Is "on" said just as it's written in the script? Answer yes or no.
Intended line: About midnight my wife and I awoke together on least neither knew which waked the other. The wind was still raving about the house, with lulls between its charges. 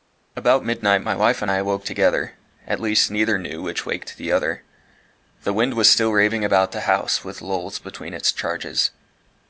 no